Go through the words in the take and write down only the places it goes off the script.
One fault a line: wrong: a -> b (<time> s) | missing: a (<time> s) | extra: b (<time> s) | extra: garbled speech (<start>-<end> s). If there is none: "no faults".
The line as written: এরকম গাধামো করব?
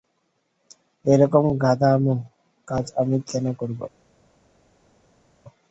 extra: কাজ আমি কেন (2.7 s)